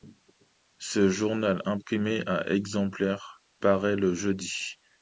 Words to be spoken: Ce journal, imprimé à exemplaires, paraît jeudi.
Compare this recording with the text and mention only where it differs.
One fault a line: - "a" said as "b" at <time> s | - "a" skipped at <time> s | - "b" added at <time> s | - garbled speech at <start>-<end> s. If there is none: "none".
- "le" added at 4.0 s